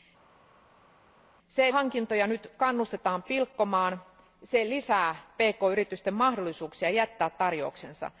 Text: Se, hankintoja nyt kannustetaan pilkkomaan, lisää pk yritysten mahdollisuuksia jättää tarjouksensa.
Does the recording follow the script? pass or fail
pass